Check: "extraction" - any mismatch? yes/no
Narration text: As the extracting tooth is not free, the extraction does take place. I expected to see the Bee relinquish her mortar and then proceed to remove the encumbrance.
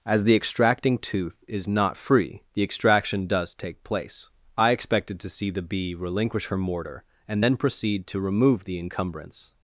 no